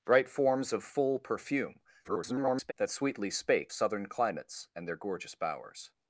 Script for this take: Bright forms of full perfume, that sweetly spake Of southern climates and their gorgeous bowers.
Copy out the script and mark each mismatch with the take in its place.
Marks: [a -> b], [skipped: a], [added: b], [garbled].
Bright forms of full perfume, [garbled] that sweetly spake [skipped: Of] southern climates and their gorgeous bowers.